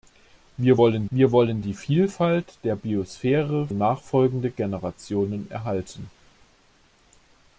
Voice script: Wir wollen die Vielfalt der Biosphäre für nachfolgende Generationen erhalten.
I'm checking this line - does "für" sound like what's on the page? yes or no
no